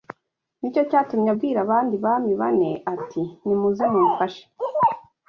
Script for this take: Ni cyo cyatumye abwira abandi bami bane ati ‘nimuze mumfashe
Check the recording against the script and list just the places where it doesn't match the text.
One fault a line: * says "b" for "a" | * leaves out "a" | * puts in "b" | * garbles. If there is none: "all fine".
all fine